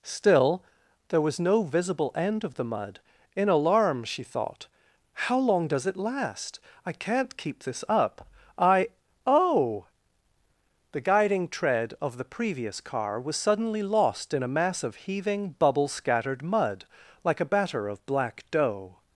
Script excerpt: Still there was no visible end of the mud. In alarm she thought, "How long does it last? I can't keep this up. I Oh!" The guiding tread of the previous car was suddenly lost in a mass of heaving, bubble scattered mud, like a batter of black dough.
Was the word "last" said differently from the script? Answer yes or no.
no